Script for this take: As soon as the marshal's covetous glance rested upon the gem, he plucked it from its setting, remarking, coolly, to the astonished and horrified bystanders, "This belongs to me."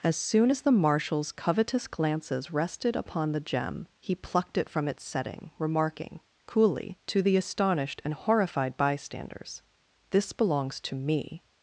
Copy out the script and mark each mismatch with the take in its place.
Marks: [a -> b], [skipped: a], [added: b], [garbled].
As soon as the marshal's covetous [glance -> glances] rested upon the gem, he plucked it from its setting, remarking, coolly, to the astonished and horrified bystanders, "This belongs to me."